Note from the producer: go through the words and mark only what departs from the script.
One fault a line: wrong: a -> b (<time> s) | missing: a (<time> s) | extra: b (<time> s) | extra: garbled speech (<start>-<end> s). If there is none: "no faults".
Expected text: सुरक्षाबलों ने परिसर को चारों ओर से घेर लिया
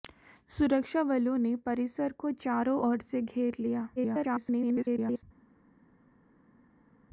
extra: garbled speech (4.0-5.2 s)